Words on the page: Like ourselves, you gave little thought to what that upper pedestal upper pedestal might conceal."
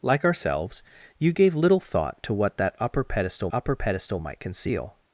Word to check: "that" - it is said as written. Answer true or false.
true